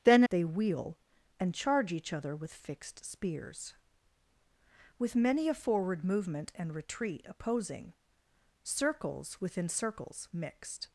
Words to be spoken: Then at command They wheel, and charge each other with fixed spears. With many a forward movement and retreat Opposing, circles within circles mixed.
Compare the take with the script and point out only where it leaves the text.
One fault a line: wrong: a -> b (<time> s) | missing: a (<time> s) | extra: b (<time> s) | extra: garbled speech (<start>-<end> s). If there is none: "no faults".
missing: at command (0.2 s)